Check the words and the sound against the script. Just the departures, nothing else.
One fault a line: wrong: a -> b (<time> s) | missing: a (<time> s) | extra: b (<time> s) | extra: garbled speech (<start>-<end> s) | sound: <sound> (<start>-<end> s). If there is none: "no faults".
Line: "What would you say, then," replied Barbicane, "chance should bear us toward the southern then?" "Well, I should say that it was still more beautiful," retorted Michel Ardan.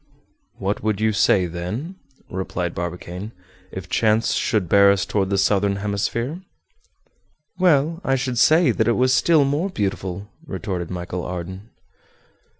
extra: if (3.7 s)
wrong: then -> hemisphere (5.7 s)